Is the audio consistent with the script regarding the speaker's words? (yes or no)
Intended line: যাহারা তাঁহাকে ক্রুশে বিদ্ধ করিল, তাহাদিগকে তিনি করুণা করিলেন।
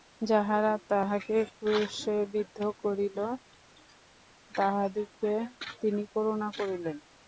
yes